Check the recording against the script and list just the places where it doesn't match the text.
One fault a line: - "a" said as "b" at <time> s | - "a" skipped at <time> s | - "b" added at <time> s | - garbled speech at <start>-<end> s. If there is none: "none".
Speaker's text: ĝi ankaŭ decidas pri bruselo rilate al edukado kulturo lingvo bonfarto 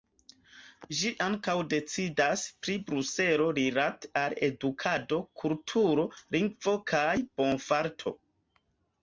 - "kaj" added at 6.9 s